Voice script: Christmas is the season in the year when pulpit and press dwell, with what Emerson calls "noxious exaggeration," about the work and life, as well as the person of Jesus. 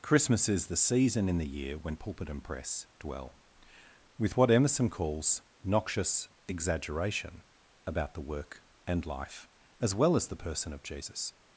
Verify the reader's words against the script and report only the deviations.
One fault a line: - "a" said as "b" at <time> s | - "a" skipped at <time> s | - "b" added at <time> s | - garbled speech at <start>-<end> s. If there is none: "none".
none